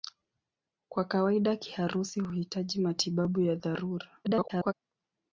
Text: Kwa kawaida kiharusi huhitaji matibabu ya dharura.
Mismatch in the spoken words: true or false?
true